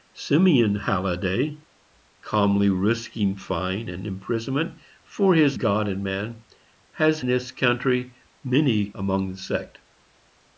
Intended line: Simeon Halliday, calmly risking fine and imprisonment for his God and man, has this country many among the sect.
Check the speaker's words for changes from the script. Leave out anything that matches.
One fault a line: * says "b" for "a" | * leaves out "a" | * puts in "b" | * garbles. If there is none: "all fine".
all fine